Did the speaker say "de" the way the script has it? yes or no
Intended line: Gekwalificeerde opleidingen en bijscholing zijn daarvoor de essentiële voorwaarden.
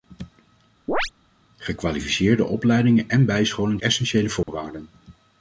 no